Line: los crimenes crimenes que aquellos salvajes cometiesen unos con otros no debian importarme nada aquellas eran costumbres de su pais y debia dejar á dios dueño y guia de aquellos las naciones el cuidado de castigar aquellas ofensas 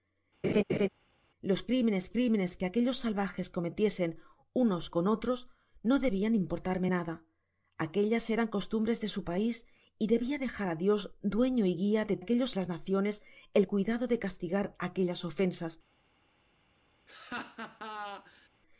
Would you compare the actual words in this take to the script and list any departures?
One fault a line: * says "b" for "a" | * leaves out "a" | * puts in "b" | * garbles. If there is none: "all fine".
all fine